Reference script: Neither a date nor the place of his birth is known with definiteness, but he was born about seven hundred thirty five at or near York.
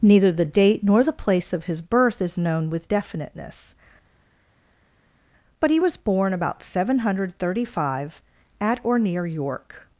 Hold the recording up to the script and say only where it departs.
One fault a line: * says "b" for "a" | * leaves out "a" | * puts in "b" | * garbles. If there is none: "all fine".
* says "the" for "a"